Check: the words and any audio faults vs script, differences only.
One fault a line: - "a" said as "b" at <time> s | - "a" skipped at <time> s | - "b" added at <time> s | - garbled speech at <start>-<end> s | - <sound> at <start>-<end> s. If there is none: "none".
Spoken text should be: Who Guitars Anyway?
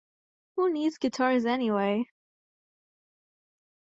- "Needs" added at 0.7 s